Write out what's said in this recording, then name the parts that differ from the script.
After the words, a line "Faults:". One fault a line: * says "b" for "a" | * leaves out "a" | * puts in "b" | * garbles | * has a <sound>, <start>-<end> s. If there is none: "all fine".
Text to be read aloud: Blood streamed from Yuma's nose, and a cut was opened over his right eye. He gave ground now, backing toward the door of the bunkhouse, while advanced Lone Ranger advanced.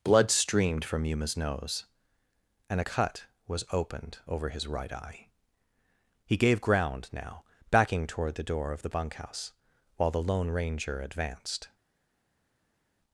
Blood streamed from Yuma's nose, and a cut was opened over his right eye. He gave ground now, backing toward the door of the bunkhouse, while the Lone Ranger advanced.
Faults:
* says "the" for "advanced"